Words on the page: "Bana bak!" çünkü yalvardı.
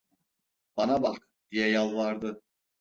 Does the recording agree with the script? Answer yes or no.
no